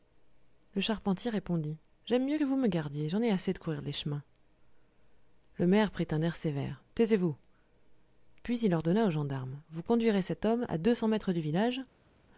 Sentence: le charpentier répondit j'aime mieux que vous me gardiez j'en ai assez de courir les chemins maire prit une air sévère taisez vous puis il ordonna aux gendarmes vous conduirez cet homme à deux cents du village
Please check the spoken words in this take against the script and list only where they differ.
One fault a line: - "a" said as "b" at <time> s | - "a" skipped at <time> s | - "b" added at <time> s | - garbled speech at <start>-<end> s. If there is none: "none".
- "le" added at 5.6 s
- "une" said as "un" at 6.1 s
- "mètres" added at 11.1 s